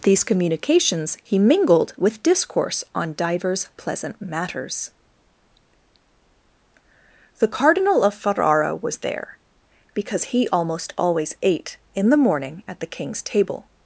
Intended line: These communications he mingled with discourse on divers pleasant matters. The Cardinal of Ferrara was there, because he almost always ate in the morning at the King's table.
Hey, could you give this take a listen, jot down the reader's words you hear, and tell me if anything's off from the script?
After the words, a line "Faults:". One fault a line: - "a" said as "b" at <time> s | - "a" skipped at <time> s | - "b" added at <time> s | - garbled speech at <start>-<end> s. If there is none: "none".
These communications he mingled with discourse on divers pleasant matters. The Cardinal of Ferrara was there, because he almost always ate in the morning at the King's table.
Faults:
none